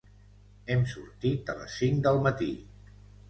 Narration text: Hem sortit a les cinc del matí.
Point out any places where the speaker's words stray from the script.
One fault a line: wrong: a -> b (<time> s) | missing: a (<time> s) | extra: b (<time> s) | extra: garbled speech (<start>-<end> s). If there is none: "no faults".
no faults